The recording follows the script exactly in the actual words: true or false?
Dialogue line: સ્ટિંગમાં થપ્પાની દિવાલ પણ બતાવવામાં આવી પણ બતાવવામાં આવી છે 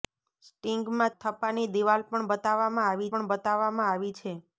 true